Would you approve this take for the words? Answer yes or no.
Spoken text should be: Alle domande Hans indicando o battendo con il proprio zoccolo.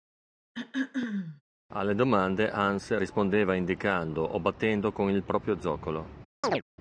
no